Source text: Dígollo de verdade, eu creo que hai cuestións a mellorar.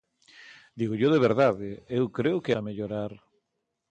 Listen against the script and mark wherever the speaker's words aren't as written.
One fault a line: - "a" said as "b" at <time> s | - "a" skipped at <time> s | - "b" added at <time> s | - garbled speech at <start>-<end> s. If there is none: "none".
- "hai cuestións" skipped at 2.5 s